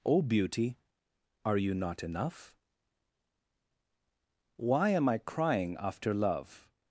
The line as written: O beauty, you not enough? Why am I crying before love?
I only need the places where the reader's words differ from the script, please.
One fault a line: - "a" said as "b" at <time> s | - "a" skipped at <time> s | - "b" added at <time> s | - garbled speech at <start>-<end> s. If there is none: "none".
- "are" added at 1.4 s
- "before" said as "after" at 5.8 s